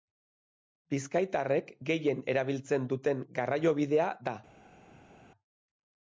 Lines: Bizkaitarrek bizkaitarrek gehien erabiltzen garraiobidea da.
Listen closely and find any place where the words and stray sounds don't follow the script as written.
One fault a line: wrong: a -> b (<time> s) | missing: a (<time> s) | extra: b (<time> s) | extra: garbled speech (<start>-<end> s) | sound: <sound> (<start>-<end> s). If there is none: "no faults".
missing: bizkaitarrek (1.7 s)
extra: duten (2.9 s)